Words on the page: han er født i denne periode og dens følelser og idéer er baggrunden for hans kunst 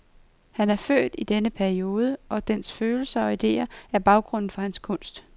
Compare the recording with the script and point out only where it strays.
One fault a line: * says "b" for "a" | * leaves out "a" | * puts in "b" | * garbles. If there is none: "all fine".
all fine